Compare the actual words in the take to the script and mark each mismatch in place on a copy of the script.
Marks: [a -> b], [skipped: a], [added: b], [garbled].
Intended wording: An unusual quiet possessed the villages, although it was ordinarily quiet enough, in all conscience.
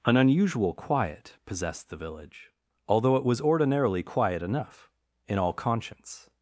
An unusual quiet possessed the [villages, -> village] although it was ordinarily quiet enough, in all conscience.